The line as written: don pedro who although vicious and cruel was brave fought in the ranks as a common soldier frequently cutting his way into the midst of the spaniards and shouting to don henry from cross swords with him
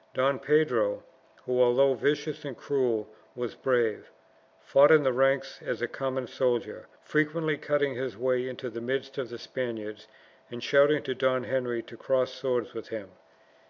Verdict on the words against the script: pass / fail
fail